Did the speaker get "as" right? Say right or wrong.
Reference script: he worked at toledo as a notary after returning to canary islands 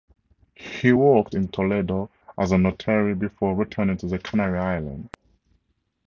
right